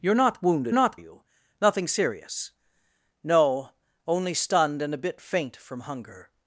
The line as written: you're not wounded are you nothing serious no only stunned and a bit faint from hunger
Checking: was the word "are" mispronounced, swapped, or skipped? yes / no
yes